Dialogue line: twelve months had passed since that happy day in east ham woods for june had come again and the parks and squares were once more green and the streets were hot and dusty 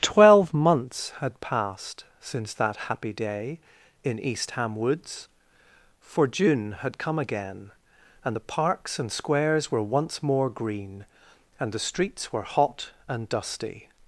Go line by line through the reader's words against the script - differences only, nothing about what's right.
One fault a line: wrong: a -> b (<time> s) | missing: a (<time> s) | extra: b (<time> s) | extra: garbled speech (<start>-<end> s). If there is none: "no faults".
no faults